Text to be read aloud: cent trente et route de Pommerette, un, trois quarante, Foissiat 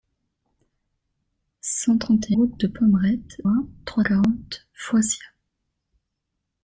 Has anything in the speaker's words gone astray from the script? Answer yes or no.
no